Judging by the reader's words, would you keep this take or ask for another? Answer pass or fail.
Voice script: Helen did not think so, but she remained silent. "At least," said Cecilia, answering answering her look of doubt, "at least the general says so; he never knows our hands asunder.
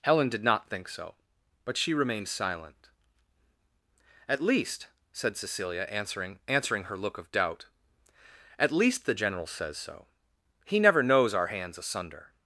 pass